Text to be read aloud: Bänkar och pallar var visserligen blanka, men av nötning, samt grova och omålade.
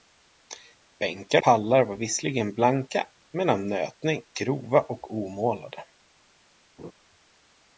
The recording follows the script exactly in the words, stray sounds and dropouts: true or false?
false